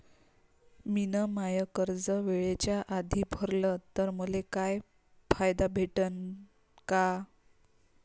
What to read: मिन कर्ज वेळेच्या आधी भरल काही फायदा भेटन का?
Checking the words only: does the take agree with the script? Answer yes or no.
no